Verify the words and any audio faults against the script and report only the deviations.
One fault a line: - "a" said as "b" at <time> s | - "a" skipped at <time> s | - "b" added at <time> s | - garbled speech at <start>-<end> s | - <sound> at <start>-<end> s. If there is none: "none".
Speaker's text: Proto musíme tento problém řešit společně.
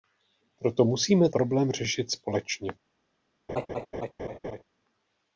- "tento" skipped at 1.3 s
- laugh at 3.5-4.6 s